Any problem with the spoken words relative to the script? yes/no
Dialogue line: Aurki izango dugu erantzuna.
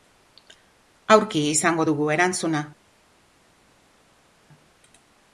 no